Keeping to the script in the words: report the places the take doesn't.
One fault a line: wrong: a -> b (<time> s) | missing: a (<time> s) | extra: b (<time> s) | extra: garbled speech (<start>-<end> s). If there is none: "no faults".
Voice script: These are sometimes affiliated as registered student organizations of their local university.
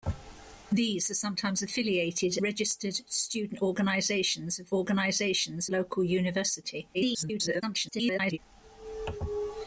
missing: as (2.4 s)
wrong: their -> organizations (4.7 s)
extra: garbled speech (6.9-8.4 s)